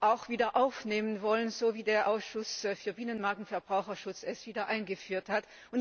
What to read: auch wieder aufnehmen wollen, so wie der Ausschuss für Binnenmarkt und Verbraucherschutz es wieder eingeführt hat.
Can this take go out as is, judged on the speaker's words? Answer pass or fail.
pass